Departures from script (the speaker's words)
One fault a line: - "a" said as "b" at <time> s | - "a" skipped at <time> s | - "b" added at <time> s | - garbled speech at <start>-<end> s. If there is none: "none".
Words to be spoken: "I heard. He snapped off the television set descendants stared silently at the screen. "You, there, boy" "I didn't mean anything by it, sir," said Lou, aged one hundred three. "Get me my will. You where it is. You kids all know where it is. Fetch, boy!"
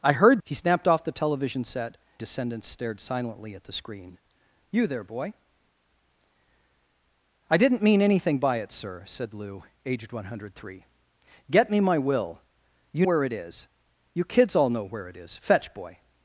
none